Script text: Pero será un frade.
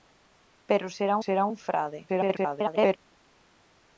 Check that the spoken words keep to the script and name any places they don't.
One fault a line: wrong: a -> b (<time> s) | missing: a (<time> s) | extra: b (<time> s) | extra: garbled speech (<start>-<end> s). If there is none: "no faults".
extra: será (1.2 s)
extra: garbled speech (2.1-3.0 s)